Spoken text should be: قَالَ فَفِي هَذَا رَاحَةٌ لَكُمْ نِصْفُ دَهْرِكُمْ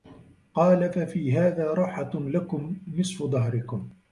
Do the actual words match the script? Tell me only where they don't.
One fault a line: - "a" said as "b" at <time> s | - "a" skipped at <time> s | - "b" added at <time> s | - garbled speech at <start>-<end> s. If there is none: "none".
none